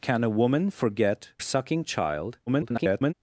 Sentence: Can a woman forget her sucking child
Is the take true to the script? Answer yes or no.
no